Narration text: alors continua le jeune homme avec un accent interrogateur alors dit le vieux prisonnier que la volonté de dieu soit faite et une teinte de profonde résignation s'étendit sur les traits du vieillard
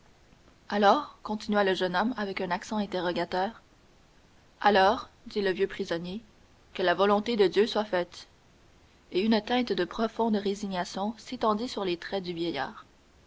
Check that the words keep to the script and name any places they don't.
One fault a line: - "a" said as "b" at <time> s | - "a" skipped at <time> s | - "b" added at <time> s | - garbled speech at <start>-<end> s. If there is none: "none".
none